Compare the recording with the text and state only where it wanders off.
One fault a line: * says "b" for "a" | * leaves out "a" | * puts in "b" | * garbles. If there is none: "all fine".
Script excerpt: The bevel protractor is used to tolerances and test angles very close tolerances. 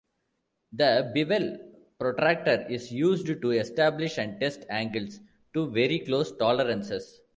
* says "establish" for "tolerances"
* puts in "to"